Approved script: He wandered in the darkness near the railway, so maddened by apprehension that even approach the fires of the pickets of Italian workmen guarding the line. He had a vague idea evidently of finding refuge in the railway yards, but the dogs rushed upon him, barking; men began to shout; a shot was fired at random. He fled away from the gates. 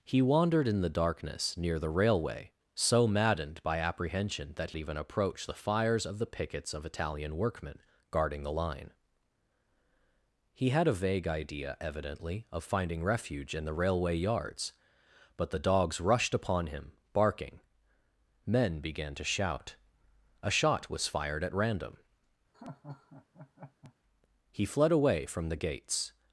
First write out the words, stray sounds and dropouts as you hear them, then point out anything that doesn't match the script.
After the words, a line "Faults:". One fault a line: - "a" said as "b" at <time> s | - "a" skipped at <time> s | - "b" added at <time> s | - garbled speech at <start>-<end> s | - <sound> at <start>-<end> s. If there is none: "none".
He wandered in the darkness near the railway, so maddened by apprehension that even approach the fires of the pickets of Italian workmen guarding the line. He had a vague idea evidently of finding refuge in the railway yards, but the dogs rushed upon him, barking; men began to shout; a shot was fired at random. He fled away from the gates.
Faults:
- laugh at 22.5-23.9 s